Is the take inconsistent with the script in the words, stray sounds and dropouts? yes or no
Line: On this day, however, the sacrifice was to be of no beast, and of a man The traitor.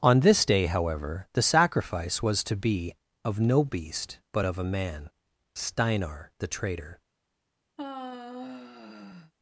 yes